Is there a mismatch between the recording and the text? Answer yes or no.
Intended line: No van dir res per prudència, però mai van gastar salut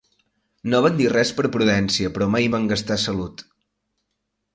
no